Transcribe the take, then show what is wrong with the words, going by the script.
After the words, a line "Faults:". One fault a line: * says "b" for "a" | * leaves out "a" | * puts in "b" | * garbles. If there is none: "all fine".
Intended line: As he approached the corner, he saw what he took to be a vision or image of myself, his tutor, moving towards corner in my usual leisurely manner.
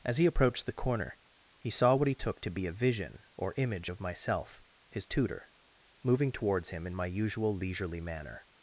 As he approached the corner, he saw what he took to be a vision or image of myself, his tutor, moving towards him in my usual leisurely manner.
Faults:
* says "him" for "corner"